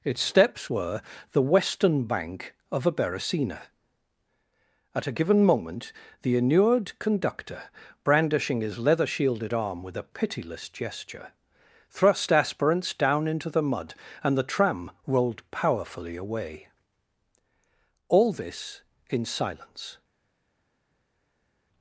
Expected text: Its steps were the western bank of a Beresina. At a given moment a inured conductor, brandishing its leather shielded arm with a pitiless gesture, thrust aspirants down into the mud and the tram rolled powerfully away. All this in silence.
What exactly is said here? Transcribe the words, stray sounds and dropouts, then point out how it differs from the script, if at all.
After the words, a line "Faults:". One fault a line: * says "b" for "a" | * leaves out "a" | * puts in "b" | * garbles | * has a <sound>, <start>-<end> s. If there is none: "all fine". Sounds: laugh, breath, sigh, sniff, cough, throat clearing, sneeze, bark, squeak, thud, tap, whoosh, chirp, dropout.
Its steps were the western bank of a Beresina. At a given moment the inured conductor, brandishing his leather shielded arm with a pitiless gesture, thrust aspirants down into the mud and the tram rolled powerfully away. All this in silence.
Faults:
* says "the" for "a"
* says "his" for "its"